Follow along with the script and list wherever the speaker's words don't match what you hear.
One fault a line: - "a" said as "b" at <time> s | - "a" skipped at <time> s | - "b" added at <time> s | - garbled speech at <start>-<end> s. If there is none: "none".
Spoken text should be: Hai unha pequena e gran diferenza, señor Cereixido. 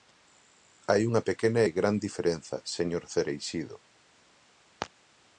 none